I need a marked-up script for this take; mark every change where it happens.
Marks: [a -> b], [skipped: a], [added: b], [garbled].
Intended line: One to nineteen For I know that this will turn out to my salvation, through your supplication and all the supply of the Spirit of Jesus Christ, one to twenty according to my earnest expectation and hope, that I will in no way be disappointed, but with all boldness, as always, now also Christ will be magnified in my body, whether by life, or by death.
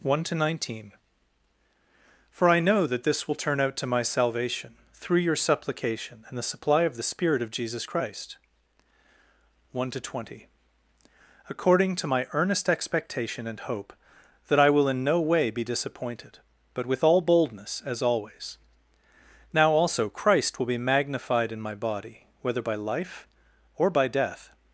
One to nineteen For I know that this will turn out to my salvation, through your supplication and [skipped: all] the supply of the Spirit of Jesus Christ, one to twenty according to my earnest expectation and hope, that I will in no way be disappointed, but with all boldness, as always, now also Christ will be magnified in my body, whether by life, or by death.